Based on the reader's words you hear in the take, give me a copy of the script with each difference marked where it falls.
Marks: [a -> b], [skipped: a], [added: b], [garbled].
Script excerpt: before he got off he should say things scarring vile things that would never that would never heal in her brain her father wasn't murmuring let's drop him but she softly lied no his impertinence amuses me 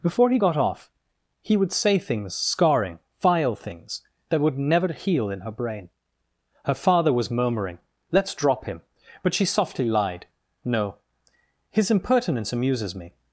before he got off he [should -> would] say things scarring vile things that would never [skipped: that would never] heal in her brain her father [wasn't -> was] murmuring let's drop him but she softly lied no his impertinence amuses me